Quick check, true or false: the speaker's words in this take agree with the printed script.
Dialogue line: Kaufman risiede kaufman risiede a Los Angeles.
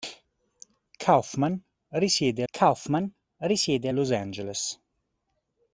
true